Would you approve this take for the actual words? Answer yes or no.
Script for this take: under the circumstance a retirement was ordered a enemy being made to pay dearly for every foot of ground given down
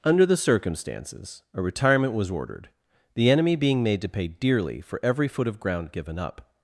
no